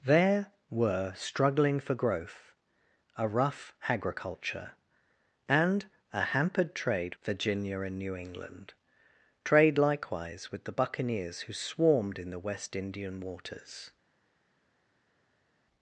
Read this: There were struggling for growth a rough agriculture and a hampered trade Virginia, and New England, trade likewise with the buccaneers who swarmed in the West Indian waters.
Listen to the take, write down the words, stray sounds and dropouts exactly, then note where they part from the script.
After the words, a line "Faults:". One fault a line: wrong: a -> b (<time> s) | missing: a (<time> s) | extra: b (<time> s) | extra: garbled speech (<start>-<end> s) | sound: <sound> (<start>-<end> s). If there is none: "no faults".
There were struggling for growth a rough agriculture and a hampered trade Virginia, and New England, trade likewise with the buccaneers who swarmed in the West Indian waters.
Faults:
no faults